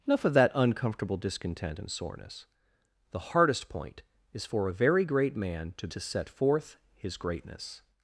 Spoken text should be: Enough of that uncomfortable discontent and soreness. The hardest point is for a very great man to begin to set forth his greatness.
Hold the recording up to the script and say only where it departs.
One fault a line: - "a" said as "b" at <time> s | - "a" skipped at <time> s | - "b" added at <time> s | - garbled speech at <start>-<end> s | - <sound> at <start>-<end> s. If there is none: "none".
- "begin" skipped at 5.9 s